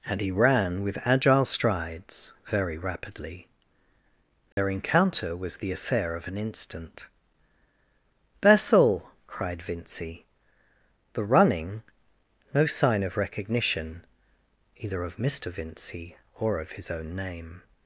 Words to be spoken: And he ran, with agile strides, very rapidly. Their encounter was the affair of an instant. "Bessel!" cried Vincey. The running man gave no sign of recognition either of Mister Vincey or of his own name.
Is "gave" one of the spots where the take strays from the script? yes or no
yes